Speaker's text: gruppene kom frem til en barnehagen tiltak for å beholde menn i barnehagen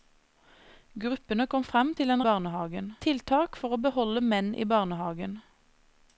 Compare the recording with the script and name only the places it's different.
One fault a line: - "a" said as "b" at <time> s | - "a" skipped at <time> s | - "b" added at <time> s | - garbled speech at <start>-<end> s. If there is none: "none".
none